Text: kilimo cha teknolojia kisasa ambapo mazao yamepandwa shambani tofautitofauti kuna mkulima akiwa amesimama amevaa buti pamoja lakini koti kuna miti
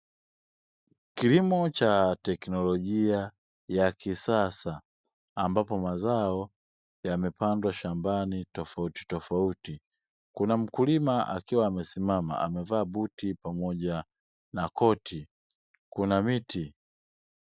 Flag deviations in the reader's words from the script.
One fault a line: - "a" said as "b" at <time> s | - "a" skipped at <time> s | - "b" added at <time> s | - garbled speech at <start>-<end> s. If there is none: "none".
- "ya" added at 3.7 s
- "lakini" said as "na" at 14.5 s